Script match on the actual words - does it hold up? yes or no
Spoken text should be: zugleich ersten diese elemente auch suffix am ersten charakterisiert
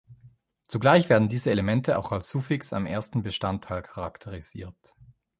no